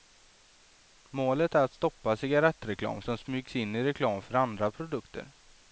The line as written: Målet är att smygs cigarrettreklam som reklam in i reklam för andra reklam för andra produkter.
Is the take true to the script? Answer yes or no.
no